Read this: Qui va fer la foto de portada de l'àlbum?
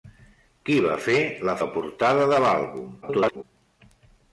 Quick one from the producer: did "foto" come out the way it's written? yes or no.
no